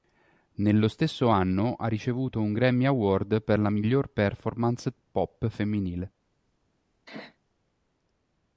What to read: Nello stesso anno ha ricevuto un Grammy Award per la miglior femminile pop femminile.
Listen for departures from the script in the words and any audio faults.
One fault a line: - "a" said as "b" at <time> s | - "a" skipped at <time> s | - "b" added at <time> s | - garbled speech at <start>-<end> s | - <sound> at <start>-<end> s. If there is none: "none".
- "femminile" said as "performance" at 4.1 s
- sneeze at 7.1-7.4 s